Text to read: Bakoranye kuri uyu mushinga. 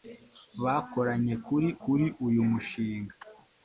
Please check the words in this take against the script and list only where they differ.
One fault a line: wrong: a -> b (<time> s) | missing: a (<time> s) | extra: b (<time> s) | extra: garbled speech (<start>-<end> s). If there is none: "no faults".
extra: kuri (1.8 s)